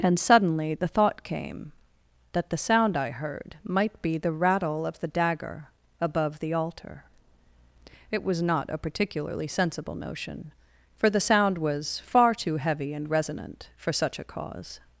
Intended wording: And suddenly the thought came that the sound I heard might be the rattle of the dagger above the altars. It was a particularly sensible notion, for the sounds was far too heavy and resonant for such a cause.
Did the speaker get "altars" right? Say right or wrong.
wrong